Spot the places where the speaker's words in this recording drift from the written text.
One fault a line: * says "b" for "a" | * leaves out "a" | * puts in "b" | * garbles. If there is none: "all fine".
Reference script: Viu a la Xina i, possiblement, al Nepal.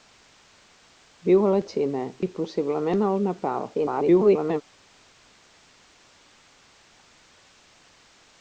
* garbles